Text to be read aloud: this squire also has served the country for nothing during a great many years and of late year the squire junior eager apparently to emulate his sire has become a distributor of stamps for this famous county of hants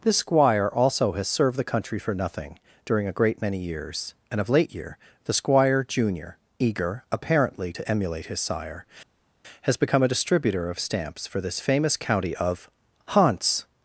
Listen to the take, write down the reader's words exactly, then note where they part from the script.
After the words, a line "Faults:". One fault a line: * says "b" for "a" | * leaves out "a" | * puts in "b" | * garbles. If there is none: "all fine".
this squire also has served the country for nothing during a great many years and of late year the squire junior eager apparently to emulate his sire has become a distributor of stamps for this famous county of hants
Faults:
all fine